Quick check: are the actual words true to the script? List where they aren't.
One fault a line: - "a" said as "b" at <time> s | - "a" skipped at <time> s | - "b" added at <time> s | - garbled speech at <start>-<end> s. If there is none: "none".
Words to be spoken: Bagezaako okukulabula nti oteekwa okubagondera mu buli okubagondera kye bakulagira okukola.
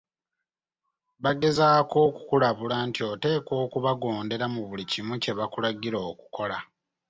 - "okubagondera" said as "kimu" at 4.9 s